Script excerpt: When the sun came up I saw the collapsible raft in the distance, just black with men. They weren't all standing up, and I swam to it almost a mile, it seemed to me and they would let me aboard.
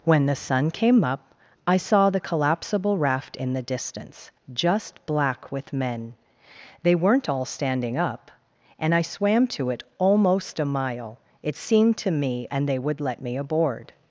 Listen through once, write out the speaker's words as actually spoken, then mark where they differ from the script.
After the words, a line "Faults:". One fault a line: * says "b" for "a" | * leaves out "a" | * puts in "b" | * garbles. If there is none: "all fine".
When the sun came up I saw the collapsible raft in the distance, just black with men. They weren't all standing up, and I swam to it almost a mile, it seemed to me and they would let me aboard.
Faults:
all fine